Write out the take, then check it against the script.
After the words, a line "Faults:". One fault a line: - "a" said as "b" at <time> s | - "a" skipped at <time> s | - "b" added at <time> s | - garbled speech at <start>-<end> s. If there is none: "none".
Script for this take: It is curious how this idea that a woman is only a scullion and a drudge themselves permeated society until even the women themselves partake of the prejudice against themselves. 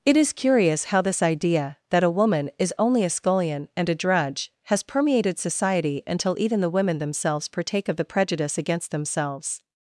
It is curious how this idea that a woman is only a scullion and a drudge has permeated society until even the women themselves partake of the prejudice against themselves.
Faults:
- "themselves" said as "has" at 4.6 s